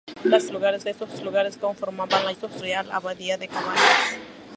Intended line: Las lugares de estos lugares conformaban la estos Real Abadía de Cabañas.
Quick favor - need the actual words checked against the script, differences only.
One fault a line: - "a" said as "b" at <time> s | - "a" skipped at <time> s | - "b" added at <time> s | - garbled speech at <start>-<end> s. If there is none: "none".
none